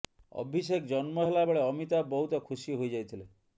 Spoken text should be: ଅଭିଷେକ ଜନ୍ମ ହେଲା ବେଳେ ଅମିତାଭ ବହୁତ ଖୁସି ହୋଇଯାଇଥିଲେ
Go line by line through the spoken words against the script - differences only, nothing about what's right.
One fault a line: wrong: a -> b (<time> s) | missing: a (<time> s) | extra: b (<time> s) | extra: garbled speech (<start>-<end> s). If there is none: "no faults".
no faults